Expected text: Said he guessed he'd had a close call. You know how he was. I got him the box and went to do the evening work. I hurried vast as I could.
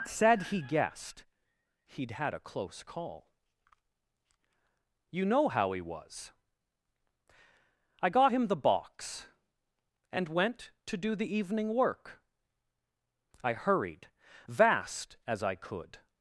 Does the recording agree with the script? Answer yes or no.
yes